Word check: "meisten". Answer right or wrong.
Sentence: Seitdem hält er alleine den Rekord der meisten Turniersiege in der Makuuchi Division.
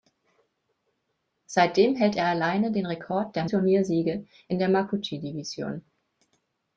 wrong